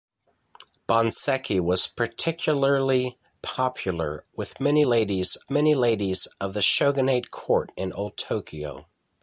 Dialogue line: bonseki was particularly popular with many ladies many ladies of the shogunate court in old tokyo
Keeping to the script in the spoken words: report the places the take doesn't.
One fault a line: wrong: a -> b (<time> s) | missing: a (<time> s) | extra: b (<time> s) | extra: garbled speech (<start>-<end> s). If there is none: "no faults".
no faults